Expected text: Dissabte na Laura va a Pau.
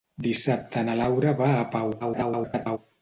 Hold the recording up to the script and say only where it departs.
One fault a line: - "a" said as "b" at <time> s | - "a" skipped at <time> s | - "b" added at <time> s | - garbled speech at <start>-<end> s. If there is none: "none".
- garbled speech at 2.0-2.8 s